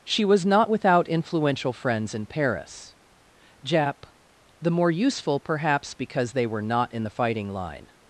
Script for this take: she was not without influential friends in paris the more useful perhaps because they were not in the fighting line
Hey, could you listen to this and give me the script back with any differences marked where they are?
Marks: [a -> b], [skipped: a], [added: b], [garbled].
she was not without influential friends in paris [added: jap] the more useful perhaps because they were not in the fighting line